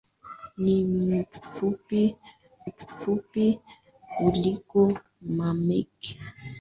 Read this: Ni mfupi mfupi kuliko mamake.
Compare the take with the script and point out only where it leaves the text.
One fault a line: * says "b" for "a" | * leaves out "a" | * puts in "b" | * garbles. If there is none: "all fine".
all fine